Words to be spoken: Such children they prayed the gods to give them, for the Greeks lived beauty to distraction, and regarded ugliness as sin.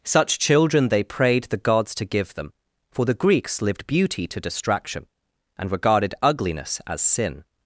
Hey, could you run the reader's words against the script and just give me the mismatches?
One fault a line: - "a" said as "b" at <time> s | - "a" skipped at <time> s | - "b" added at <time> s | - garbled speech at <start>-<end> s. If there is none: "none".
none